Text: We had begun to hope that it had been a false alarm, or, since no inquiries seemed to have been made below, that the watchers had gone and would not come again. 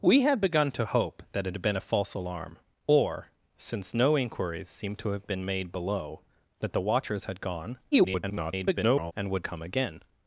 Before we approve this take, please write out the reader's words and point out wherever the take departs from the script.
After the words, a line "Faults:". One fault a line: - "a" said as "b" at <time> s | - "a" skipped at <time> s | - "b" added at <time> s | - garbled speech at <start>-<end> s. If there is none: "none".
We had begun to hope that it had been a false alarm, or, since no inquiries seemed to have been made below, that the watchers had gone [garbled] and would come again.
Faults:
- garbled speech at 7.9-9.1 s
- "not" skipped at 9.5 s